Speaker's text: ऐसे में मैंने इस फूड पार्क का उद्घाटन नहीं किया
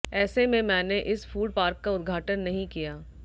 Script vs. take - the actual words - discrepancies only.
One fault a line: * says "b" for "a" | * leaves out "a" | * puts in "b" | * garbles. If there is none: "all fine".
all fine